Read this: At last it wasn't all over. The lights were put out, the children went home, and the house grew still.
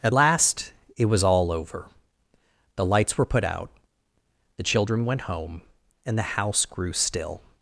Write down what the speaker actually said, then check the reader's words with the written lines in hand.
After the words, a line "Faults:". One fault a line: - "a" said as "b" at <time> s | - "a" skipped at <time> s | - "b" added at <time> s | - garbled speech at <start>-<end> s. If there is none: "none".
At last it was all over. The lights were put out, the children went home, and the house grew still.
Faults:
- "wasn't" said as "was" at 1.1 s